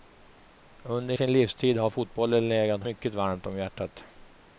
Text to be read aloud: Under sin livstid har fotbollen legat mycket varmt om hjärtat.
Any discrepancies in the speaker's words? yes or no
no